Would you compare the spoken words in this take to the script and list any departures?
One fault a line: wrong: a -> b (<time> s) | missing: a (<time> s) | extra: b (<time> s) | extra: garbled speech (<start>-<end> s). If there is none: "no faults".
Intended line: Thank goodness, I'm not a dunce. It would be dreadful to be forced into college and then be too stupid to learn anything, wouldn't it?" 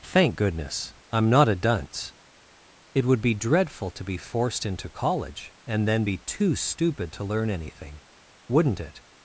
no faults